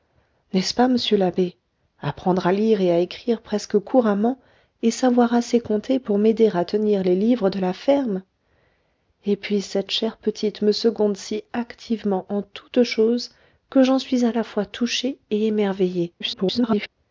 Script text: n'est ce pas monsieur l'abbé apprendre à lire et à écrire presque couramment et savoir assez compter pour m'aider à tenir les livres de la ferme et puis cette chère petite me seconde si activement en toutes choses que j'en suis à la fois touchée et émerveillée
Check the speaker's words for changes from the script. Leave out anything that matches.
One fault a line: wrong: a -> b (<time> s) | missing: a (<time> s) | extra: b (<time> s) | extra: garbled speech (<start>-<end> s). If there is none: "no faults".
extra: garbled speech (16.2-16.9 s)